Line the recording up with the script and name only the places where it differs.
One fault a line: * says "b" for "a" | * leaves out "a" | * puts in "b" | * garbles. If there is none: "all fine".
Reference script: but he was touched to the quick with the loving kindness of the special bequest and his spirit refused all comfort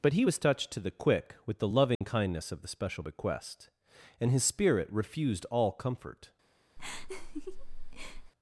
all fine